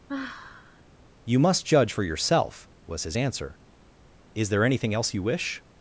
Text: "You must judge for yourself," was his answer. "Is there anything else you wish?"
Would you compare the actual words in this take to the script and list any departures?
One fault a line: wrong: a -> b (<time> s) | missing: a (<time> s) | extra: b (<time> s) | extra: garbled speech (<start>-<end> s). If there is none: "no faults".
no faults